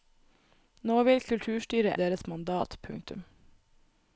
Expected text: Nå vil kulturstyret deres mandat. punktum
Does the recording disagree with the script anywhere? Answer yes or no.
no